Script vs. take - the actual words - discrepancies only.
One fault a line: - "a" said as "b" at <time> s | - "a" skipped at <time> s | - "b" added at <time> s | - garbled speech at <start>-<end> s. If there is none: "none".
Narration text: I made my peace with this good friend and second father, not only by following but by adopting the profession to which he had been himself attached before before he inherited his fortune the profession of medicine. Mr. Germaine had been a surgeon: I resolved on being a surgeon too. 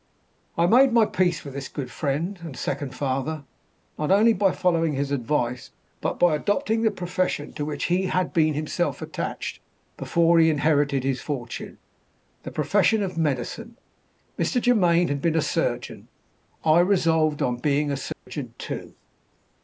- "his advice" added at 4.9 s
- "before" skipped at 10.4 s